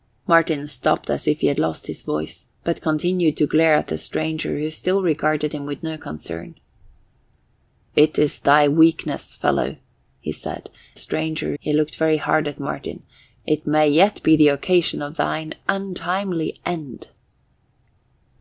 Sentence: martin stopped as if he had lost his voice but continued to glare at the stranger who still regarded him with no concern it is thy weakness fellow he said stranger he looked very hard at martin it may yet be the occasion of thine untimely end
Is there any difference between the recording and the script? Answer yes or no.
no